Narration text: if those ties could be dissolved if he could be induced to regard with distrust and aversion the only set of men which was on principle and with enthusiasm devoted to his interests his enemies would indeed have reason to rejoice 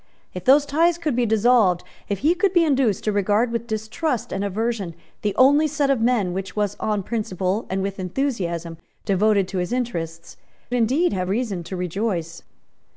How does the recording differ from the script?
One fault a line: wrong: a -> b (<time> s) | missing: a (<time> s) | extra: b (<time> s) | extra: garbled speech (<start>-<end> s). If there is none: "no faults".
missing: his enemies would (10.4 s)